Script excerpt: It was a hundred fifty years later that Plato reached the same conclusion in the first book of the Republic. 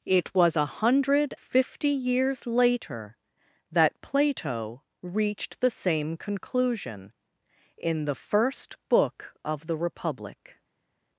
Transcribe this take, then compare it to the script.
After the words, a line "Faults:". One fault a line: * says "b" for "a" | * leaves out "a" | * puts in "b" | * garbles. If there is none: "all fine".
It was a hundred fifty years later that Plato reached the same conclusion in the first book of the Republic.
Faults:
all fine